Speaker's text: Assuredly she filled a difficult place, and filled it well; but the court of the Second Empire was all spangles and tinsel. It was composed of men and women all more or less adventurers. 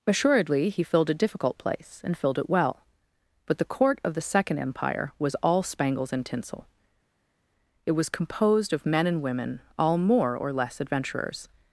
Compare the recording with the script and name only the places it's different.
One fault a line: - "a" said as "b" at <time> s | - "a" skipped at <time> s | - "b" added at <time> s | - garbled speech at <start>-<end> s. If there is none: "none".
- "she" said as "he" at 0.7 s